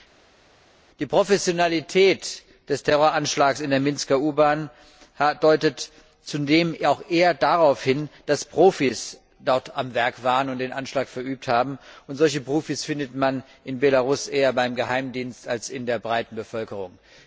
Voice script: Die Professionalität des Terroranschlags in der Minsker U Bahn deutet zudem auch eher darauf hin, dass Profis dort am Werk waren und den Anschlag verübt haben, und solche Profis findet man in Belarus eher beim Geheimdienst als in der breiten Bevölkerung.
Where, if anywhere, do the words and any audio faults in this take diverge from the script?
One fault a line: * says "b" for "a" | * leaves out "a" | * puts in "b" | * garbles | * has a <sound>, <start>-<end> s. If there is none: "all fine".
all fine